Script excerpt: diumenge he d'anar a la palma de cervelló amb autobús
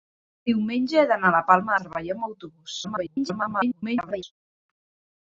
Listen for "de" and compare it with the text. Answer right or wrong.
wrong